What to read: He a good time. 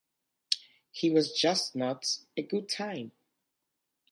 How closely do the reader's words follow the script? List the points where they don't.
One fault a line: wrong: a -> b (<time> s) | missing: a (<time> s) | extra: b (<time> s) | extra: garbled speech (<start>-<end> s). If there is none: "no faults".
extra: was just not (1.1 s)